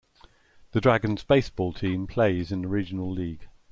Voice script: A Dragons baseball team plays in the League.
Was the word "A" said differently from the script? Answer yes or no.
yes